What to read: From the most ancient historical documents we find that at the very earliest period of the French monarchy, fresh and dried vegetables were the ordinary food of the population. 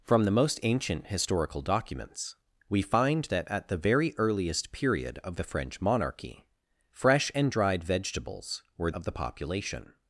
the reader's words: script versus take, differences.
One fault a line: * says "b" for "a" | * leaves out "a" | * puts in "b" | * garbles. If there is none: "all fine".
* leaves out "the ordinary food"